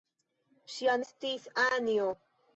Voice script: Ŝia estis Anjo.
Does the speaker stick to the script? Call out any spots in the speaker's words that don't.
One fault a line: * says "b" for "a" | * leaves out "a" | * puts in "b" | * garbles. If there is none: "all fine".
all fine